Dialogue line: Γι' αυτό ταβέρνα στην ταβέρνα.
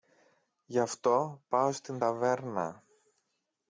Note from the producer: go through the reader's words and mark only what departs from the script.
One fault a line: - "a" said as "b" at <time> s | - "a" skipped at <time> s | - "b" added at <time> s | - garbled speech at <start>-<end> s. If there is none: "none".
- "ταβέρνα" said as "πάω" at 1.5 s